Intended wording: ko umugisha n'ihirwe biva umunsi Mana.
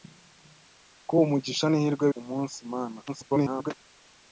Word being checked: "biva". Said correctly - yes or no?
no